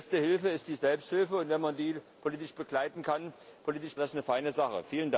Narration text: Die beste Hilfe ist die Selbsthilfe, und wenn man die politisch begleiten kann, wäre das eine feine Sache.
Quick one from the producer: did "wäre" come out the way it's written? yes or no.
no